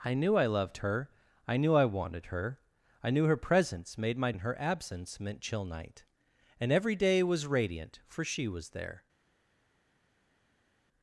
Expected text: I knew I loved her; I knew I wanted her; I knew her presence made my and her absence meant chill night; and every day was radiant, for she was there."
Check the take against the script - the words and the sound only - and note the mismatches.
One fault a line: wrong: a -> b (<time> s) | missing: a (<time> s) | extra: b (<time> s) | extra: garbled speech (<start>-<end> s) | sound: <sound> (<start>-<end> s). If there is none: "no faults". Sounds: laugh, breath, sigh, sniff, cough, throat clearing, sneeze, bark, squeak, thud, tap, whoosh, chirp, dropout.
no faults